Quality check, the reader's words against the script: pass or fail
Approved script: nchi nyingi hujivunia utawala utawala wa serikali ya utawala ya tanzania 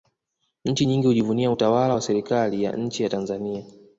fail